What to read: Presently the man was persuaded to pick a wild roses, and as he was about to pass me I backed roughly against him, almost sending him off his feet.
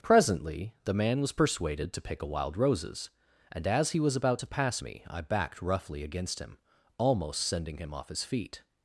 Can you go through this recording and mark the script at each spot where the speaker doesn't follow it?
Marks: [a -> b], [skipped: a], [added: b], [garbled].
Presently the man was persuaded to pick a wild roses, and as he was about to pass me I backed roughly against him, almost sending him off his feet.